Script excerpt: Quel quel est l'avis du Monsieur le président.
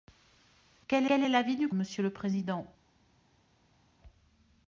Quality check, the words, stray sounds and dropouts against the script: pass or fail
pass